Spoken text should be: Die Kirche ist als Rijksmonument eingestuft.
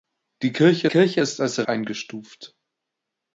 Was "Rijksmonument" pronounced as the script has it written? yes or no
no